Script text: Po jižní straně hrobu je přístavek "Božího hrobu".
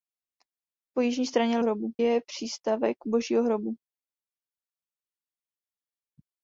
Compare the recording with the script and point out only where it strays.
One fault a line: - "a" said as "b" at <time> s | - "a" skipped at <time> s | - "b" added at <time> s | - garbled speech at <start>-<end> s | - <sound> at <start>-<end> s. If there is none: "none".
none